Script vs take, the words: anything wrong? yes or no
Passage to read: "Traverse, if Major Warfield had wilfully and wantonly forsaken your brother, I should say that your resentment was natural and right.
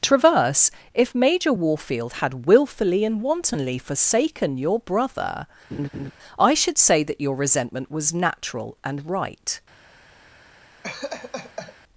no